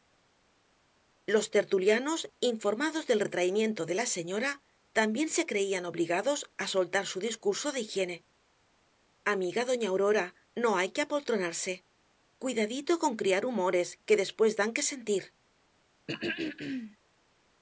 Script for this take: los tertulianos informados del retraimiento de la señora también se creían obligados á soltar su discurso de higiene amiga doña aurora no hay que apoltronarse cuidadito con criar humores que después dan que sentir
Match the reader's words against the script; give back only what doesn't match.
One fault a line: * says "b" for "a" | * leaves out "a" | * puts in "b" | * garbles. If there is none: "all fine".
all fine